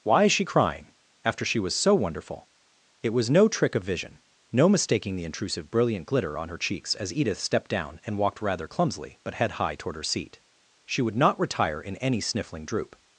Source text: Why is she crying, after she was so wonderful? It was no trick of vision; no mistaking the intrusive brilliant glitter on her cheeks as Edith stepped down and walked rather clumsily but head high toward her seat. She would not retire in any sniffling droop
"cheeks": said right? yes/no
yes